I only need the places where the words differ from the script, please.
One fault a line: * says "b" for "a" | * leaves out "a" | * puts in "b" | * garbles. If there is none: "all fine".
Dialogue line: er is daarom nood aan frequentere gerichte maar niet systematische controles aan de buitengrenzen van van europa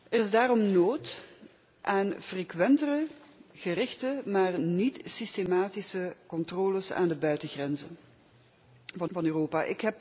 all fine